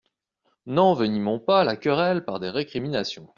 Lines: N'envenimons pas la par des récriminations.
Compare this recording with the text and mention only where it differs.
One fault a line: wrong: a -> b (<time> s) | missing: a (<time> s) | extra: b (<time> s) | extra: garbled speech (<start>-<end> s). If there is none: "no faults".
extra: querelle (1.8 s)